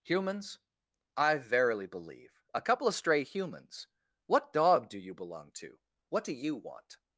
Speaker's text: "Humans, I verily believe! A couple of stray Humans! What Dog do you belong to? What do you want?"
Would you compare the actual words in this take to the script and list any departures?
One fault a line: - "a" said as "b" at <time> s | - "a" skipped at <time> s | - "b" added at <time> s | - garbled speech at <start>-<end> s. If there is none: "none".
none